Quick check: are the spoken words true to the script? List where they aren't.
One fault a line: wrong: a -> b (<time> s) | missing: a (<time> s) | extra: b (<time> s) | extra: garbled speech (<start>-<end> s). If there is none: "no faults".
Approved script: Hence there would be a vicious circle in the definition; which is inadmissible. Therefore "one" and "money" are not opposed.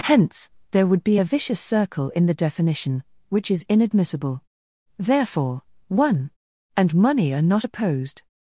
no faults